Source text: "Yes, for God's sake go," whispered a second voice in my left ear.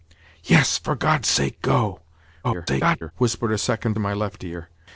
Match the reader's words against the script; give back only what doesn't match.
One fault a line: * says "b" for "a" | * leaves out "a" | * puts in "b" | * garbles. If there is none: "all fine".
* garbles
* leaves out "voice"